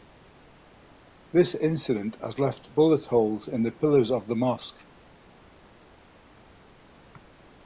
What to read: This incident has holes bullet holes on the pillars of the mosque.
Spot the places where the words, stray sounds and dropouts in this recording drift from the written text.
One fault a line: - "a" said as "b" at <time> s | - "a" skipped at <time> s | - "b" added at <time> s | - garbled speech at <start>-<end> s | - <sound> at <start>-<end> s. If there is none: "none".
- "holes" said as "left" at 2.4 s
- "on" said as "in" at 3.5 s